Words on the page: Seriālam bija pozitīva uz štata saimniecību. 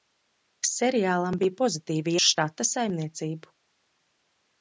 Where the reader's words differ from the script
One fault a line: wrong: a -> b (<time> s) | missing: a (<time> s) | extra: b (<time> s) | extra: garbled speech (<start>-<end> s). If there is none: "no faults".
no faults